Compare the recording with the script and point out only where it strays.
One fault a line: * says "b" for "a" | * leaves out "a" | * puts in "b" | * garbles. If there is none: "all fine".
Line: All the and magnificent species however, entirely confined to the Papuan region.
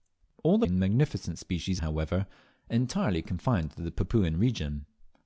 all fine